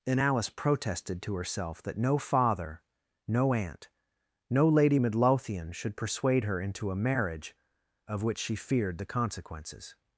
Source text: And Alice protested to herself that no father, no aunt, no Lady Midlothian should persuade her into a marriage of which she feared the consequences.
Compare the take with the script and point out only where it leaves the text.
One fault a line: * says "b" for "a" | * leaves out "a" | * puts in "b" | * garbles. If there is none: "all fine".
all fine